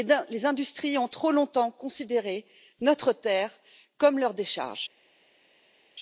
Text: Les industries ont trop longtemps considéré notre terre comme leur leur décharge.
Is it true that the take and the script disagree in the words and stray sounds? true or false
true